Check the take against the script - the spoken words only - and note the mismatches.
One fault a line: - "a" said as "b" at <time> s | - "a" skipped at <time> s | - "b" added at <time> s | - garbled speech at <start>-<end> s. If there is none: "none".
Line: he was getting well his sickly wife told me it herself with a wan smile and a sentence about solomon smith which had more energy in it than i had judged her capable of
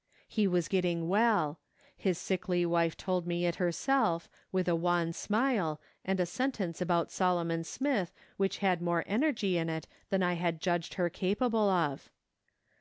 none